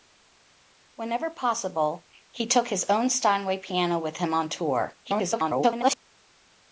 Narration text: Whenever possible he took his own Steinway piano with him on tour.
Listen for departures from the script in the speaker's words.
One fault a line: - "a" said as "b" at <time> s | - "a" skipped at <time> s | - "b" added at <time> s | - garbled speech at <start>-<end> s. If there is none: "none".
- garbled speech at 5.0-6.0 s